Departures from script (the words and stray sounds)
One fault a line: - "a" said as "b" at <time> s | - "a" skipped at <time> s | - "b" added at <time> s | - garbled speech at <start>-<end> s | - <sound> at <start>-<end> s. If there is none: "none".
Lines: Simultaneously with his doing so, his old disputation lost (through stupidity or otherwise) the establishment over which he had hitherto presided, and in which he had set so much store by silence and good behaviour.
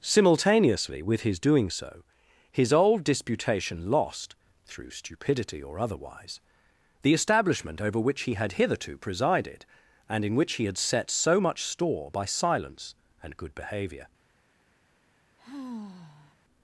- sigh at 15.4-16.3 s